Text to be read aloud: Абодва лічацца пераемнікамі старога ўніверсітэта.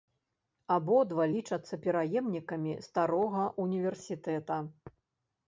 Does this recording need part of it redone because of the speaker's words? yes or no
no